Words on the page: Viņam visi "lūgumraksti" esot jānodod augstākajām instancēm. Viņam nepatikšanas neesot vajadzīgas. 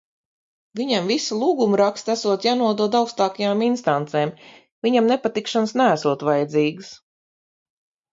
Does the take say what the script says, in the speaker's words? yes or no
yes